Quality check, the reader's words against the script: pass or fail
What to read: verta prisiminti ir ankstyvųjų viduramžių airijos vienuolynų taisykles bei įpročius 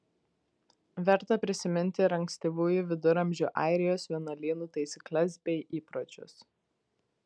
pass